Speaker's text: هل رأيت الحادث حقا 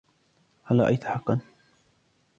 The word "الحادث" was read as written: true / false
false